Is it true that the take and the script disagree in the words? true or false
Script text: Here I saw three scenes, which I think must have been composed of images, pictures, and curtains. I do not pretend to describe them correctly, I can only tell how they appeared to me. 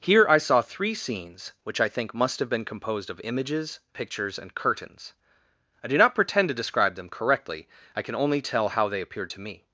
false